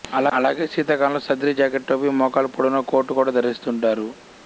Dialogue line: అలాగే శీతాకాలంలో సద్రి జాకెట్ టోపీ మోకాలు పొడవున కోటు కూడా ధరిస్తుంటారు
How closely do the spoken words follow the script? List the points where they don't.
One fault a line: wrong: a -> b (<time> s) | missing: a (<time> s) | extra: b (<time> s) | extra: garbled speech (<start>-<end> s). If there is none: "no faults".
no faults